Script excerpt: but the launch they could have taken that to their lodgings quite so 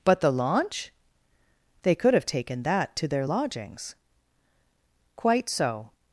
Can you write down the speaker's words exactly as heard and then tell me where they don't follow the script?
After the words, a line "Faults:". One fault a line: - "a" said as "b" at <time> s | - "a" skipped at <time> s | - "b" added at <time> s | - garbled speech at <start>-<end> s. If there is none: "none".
but the launch they could have taken that to their lodgings quite so
Faults:
none